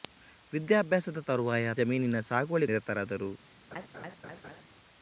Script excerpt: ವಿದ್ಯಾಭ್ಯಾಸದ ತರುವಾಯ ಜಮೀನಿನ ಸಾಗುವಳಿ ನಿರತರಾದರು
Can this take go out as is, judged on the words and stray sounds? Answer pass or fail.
fail